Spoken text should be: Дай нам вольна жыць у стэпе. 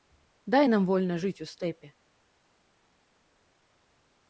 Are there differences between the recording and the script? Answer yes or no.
no